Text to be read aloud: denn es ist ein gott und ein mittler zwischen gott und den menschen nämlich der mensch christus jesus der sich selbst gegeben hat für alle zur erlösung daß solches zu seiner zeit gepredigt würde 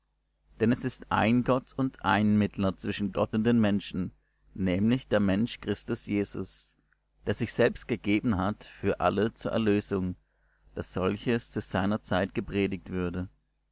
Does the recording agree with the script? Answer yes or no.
yes